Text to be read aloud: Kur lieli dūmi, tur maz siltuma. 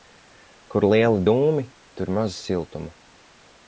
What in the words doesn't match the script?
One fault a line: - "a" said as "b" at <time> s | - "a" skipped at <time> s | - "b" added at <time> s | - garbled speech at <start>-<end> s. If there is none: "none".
none